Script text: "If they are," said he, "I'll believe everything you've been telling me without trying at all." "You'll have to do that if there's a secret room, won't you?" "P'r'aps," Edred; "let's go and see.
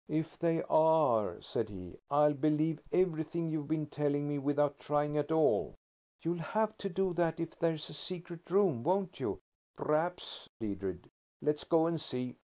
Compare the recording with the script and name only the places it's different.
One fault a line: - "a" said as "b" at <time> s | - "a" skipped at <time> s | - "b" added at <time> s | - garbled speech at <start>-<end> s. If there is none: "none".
none